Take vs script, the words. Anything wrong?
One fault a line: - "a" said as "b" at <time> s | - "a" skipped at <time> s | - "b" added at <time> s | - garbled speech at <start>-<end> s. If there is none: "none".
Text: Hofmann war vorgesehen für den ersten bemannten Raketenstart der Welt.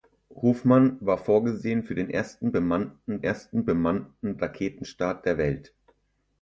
- "ersten bemannten" added at 3.2 s